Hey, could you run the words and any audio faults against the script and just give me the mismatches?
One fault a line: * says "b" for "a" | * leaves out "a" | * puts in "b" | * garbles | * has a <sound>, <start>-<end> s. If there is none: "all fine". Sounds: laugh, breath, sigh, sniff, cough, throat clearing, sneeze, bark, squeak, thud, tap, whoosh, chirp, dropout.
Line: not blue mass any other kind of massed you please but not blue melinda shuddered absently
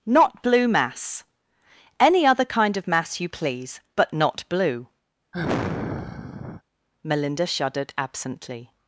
* says "mass" for "massed"
* has a sigh, 5.3-6.6 s